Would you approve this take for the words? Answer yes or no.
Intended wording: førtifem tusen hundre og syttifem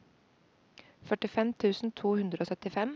no